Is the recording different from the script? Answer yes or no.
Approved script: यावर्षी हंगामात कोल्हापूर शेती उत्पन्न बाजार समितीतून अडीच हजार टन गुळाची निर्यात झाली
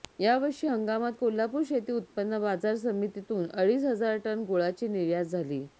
no